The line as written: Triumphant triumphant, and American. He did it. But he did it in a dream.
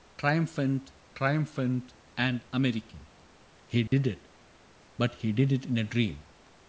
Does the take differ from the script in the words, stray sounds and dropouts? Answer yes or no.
yes